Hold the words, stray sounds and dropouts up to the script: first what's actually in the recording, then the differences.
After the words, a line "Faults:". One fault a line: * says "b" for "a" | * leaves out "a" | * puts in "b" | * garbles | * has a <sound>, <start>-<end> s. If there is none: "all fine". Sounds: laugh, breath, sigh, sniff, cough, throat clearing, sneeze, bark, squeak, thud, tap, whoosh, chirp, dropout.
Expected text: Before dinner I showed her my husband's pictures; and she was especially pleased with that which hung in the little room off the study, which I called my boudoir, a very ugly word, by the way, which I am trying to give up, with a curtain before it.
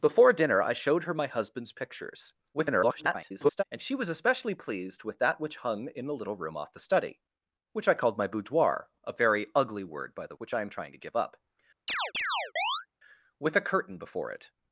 Before dinner I showed her my husband's pictures; [garbled] and she was especially pleased with that which hung in the little room off the study, which I called my boudoir, a very ugly word, by the which I am trying to give up, with a curtain before it.
Faults:
* garbles
* leaves out "way"
* has a chirp, 11.9-12.9 s